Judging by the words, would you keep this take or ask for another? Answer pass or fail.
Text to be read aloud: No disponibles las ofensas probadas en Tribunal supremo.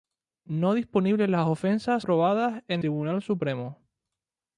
pass